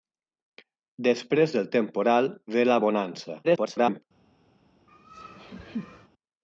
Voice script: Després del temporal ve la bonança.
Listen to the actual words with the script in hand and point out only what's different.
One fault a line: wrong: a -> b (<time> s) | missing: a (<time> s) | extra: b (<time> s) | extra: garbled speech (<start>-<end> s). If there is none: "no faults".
extra: garbled speech (3.4-4.0 s)